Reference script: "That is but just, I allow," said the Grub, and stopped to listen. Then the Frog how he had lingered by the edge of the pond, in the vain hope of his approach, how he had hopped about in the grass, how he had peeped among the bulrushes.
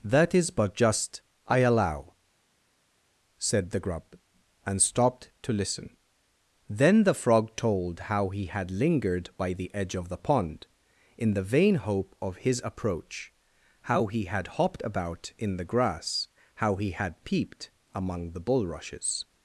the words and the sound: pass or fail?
fail